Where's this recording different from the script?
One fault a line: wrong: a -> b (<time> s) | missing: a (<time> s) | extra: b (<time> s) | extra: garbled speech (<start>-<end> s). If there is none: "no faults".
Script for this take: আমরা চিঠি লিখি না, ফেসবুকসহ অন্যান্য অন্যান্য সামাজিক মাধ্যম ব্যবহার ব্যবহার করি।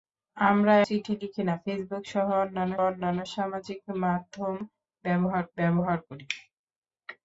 no faults